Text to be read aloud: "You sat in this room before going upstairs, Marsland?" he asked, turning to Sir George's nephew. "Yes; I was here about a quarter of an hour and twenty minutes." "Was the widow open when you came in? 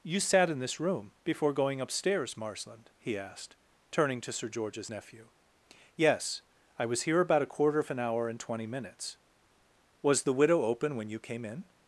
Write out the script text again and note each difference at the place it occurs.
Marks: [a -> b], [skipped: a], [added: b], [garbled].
"You sat in this room before going upstairs, Marsland?" he asked, turning to Sir George's nephew. "Yes; I was here about a quarter of an hour and twenty minutes." "Was the widow open when you came in?